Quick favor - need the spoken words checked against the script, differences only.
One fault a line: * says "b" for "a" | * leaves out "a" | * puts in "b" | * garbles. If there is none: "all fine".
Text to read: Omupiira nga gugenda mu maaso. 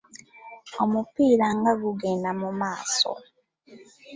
all fine